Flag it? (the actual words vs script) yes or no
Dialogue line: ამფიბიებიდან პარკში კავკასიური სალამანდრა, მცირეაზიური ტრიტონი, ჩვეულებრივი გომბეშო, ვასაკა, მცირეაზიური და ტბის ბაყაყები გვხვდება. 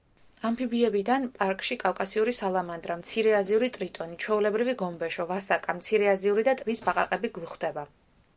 no